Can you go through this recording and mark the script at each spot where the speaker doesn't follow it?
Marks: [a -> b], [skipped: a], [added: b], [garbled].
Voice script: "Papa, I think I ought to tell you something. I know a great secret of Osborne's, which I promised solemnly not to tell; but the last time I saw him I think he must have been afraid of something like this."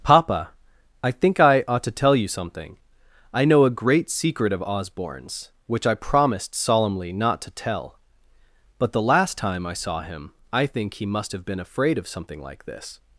"Papa, I think I ought to tell you something. I know a great secret of Osborne's, which I promised solemnly not to tell; but the last time I saw him I think he must have been afraid of something like this."